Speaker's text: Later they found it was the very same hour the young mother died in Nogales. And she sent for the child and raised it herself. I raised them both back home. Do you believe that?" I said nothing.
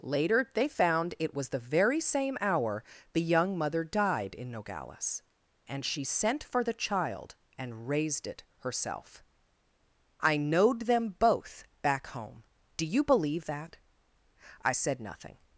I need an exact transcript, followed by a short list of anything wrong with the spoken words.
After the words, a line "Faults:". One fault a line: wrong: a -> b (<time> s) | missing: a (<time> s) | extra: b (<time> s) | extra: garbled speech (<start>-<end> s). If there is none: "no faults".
Later they found it was the very same hour the young mother died in Nogales. And she sent for the child and raised it herself. I knowed them both back home. Do you believe that?" I said nothing.
Faults:
wrong: raised -> knowed (10.4 s)